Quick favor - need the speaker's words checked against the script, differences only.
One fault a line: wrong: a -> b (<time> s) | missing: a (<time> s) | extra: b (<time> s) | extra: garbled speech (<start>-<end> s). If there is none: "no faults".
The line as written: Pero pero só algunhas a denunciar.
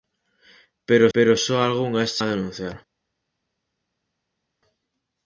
no faults